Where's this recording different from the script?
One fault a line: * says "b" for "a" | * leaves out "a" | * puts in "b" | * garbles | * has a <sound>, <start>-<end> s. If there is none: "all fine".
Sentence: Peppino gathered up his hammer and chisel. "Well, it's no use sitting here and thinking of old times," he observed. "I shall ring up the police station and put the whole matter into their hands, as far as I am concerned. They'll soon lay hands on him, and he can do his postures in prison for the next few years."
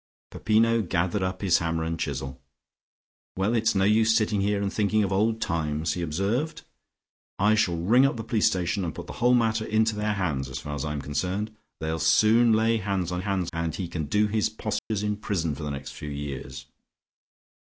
* says "hands" for "him"
* has a dropout, 14.8-14.9 s